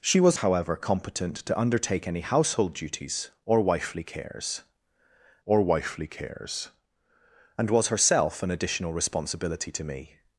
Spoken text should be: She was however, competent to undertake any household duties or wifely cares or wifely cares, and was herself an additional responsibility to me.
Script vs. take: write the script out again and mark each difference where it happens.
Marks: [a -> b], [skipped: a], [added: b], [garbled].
She was however, competent to undertake any household duties or wifely cares or wifely cares, and was herself an additional responsibility to me.